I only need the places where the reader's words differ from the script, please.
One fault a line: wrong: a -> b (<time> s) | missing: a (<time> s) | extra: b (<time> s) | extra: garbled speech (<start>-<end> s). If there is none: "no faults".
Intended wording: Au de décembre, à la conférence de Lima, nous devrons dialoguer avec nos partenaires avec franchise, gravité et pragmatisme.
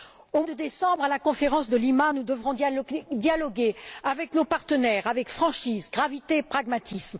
no faults